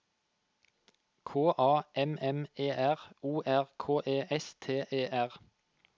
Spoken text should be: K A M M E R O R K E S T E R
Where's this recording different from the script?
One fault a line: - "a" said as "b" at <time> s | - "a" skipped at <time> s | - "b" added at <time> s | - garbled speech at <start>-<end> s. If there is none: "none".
none